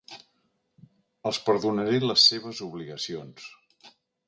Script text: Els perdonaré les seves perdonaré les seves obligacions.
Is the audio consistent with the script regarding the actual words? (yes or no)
no